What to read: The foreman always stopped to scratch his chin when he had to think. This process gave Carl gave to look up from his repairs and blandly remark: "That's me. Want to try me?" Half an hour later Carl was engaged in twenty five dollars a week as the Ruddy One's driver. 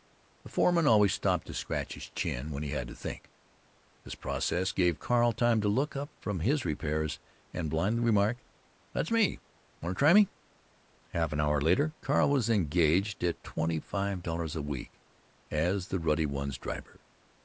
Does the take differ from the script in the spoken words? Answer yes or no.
yes